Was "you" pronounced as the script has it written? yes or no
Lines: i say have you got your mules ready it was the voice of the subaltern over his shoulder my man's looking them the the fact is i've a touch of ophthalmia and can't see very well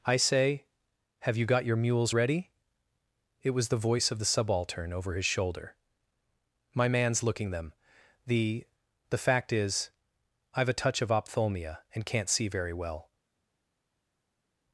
yes